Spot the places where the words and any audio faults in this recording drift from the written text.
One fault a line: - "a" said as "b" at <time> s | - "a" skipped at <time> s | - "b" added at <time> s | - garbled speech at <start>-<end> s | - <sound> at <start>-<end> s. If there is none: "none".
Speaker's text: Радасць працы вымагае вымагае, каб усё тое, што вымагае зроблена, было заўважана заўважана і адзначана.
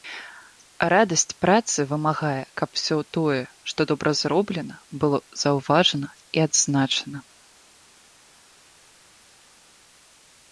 - "вымагае" skipped at 2.4 s
- "вымагае" said as "добра" at 3.9 s
- "заўважана" skipped at 6.1 s